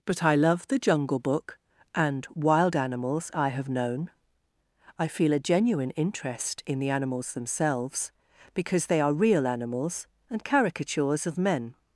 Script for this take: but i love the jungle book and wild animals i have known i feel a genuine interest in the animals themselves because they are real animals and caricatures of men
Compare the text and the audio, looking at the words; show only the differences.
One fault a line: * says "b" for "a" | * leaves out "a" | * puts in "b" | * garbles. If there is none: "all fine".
all fine